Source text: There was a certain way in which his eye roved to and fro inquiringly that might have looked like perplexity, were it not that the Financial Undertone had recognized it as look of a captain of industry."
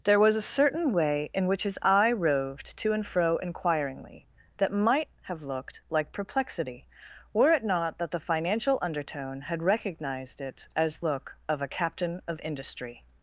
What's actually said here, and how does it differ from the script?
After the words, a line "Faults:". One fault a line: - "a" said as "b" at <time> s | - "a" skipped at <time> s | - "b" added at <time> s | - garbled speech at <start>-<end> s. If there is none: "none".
There was a certain way in which his eye roved to and fro inquiringly that might have looked like perplexity, were it not that the Financial Undertone had recognized it as look of a captain of industry."
Faults:
none